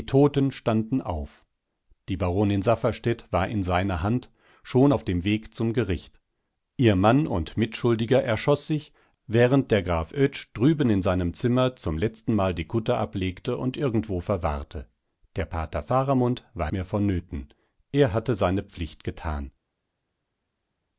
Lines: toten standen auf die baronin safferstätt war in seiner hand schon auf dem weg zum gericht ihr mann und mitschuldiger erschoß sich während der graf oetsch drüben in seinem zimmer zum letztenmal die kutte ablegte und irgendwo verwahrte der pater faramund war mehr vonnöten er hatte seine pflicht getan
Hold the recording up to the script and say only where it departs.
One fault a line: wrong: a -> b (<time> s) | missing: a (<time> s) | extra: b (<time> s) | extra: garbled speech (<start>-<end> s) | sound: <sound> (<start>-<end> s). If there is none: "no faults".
no faults